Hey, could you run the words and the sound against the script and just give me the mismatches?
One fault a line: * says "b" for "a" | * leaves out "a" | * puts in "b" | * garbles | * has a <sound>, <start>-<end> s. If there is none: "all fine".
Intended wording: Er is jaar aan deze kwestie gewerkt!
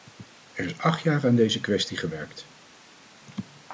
* puts in "acht"